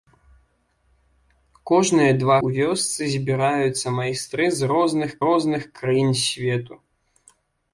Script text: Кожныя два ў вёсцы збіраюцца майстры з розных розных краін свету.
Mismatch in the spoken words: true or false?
false